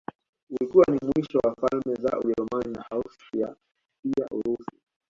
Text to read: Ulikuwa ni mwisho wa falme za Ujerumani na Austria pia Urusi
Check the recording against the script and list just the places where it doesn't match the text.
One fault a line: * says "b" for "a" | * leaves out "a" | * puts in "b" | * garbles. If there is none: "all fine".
all fine